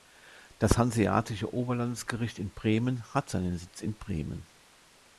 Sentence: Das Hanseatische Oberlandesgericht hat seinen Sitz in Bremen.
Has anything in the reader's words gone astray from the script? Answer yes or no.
yes